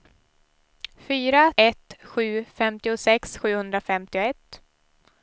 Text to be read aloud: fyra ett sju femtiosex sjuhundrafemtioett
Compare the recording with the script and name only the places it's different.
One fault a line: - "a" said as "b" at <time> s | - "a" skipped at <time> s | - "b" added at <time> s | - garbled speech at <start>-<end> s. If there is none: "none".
none